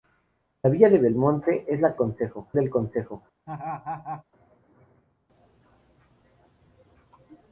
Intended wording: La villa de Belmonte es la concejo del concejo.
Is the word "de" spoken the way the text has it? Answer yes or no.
yes